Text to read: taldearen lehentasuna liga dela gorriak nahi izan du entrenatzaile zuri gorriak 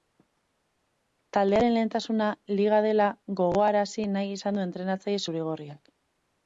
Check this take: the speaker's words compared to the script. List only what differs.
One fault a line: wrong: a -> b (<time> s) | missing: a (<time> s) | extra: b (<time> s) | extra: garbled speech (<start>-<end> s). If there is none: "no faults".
wrong: gorriak -> gogoarazi (3.4 s)